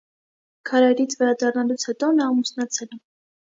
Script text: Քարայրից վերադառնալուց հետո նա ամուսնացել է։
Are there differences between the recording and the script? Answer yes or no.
no